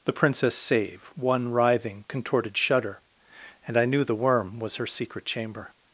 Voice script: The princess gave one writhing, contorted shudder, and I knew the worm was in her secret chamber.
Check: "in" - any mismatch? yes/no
yes